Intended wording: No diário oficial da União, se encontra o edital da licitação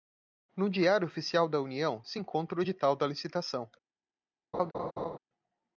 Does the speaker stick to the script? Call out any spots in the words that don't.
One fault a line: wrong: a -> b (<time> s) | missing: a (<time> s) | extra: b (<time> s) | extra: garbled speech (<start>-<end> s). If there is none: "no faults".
no faults